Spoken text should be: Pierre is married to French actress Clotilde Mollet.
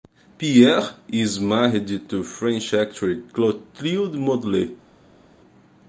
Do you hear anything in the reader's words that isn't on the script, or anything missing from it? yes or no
no